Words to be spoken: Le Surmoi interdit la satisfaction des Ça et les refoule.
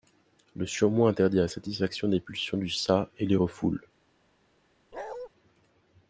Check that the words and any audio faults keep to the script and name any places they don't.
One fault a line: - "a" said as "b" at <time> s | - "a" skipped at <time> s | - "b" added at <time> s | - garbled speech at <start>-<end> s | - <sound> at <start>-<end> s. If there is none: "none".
- "pulsions du" added at 2.2 s
- bark at 4.9-5.3 s